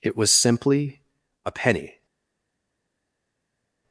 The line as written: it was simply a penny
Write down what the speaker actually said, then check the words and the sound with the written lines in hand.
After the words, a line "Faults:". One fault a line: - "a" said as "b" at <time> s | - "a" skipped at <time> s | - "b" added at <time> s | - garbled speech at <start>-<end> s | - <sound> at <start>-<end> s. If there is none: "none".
it was simply a penny
Faults:
none